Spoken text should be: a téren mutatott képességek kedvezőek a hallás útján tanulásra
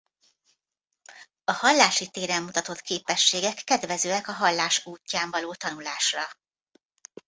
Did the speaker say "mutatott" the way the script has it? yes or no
yes